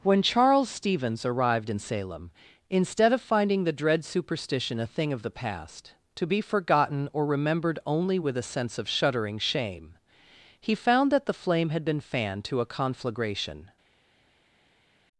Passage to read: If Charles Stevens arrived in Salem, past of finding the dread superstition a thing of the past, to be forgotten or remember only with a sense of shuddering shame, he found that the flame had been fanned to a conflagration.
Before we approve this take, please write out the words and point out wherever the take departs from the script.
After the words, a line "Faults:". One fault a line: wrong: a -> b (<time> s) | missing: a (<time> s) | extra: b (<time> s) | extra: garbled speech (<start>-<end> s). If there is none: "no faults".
When Charles Stevens arrived in Salem, instead of finding the dread superstition a thing of the past, to be forgotten or remembered only with a sense of shuddering shame, he found that the flame had been fanned to a conflagration.
Faults:
wrong: If -> When (0.0 s)
wrong: past -> instead (2.7 s)
wrong: remember -> remembered (7.2 s)